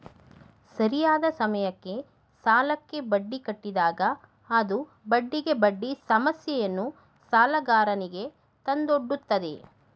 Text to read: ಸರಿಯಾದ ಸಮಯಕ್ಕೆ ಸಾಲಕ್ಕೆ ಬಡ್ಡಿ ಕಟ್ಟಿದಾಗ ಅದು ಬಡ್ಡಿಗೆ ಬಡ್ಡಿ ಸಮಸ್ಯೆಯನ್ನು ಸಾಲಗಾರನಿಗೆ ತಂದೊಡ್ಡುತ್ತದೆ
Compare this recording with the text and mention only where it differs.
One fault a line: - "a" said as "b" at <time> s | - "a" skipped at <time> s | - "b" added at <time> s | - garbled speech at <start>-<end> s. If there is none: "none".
none